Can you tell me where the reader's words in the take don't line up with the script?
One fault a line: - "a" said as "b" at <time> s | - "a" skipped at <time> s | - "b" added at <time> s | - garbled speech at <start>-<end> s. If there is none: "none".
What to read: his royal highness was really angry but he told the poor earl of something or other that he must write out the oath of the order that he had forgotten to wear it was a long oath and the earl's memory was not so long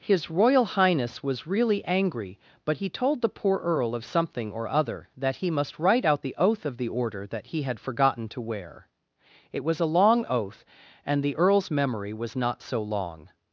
none